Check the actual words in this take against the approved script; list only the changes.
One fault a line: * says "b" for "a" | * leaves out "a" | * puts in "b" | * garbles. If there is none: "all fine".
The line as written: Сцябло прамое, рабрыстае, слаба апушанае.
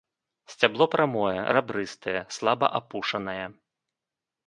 all fine